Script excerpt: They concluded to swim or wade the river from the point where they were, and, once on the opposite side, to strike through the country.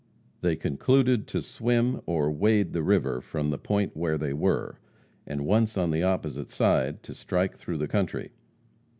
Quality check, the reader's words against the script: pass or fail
pass